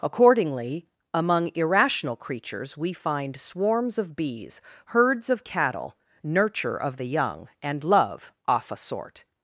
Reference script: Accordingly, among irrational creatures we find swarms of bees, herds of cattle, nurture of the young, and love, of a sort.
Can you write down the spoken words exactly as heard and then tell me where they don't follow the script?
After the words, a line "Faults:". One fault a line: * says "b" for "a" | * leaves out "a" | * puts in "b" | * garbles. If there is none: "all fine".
Accordingly, among irrational creatures we find swarms of bees, herds of cattle, nurture of the young, and love, off a sort.
Faults:
* says "off" for "of"